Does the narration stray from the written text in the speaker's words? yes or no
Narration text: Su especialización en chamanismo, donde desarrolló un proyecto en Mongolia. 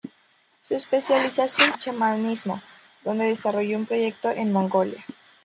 no